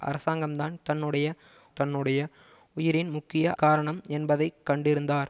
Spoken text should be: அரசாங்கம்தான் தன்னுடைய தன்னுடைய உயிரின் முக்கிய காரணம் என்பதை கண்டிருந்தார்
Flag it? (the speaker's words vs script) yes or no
no